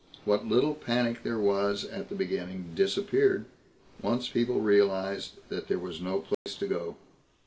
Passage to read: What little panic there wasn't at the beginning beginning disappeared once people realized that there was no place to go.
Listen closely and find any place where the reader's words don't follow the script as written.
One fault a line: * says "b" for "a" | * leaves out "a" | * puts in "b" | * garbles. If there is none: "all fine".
* says "was" for "wasn't"
* leaves out "beginning"